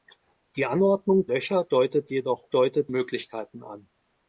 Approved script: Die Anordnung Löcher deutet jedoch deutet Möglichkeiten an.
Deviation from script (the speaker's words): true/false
false